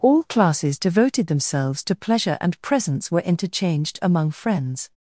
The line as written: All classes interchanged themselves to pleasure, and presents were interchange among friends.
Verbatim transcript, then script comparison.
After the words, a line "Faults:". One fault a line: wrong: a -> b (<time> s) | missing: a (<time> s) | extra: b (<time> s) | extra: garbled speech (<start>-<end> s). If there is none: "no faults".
All classes devoted themselves to pleasure, and presents were interchanged among friends.
Faults:
wrong: interchanged -> devoted (0.8 s)
wrong: interchange -> interchanged (3.2 s)